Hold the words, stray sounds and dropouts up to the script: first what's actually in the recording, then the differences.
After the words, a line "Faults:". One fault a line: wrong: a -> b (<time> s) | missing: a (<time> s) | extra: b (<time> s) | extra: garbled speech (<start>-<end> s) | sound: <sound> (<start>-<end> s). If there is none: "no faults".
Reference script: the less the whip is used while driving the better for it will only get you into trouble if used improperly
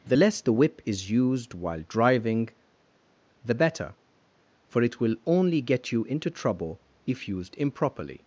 the less the whip is used while driving the better for it will only get you into trouble if used improperly
Faults:
no faults